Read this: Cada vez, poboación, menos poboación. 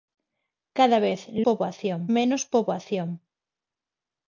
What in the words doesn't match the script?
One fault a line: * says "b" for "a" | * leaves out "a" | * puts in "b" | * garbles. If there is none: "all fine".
all fine